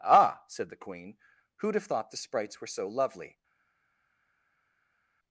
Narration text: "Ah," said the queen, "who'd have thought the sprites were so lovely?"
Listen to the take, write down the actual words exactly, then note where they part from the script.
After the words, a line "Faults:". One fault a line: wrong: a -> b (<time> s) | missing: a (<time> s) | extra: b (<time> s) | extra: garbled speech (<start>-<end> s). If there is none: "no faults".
"Ah," said the queen, "who'd have thought the sprites were so lovely?"
Faults:
no faults